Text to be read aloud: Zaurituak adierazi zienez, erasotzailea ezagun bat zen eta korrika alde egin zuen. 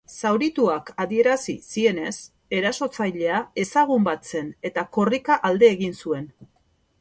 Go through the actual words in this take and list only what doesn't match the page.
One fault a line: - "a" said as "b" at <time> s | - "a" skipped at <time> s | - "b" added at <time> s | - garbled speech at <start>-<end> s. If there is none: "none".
none